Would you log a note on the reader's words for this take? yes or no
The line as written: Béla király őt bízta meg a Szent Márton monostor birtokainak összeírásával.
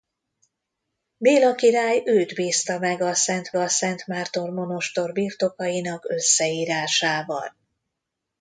yes